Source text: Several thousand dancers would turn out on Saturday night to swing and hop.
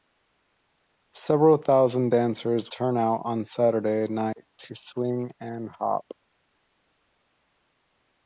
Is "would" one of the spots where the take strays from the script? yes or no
yes